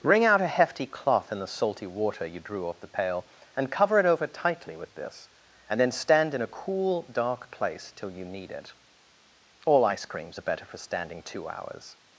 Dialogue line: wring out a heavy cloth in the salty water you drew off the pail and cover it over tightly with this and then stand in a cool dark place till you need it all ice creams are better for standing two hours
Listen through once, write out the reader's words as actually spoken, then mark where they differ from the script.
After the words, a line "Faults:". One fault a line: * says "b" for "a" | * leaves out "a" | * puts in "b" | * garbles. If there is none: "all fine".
wring out a hefty cloth in the salty water you drew off the pail and cover it over tightly with this and then stand in a cool dark place till you need it all ice creams are better for standing two hours
Faults:
* says "hefty" for "heavy"